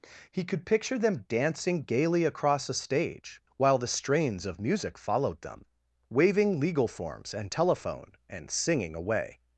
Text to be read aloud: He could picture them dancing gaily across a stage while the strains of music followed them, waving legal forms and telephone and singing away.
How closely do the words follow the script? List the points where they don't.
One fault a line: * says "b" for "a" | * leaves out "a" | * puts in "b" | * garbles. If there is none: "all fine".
all fine